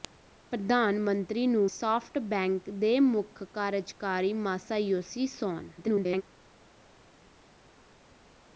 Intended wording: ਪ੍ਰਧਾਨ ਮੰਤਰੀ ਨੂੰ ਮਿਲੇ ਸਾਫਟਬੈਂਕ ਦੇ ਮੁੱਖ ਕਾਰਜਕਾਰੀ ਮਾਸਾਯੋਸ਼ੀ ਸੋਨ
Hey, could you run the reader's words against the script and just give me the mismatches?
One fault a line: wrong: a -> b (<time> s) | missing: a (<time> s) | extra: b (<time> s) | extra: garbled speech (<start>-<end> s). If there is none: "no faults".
missing: ਮਿਲੇ (1.7 s)
extra: garbled speech (5.8-6.2 s)